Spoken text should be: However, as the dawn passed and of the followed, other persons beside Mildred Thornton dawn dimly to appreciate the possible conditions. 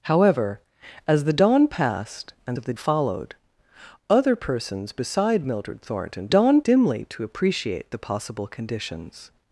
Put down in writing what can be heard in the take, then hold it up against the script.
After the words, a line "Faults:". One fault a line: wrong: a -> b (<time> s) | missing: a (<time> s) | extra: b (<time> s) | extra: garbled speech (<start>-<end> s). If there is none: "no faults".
However, as the dawn passed and of the followed, other persons beside Mildred Thornton dawn dimly to appreciate the possible conditions.
Faults:
no faults